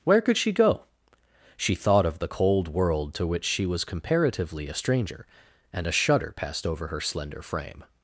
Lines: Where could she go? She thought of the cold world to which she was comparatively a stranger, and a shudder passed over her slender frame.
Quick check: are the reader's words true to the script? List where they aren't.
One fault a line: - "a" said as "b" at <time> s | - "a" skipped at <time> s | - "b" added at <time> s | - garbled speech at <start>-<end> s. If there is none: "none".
none